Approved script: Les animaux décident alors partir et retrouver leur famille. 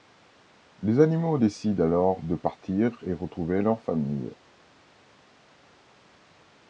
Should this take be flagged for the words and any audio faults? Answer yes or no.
yes